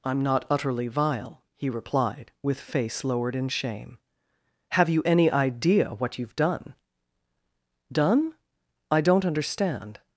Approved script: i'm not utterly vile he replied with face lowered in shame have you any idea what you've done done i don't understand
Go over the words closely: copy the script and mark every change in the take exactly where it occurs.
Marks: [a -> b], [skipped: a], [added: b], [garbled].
i'm not utterly vile he replied with face lowered in shame have you any idea what you've done done i don't understand